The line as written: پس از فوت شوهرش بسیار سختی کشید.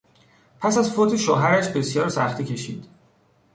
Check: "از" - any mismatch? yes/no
no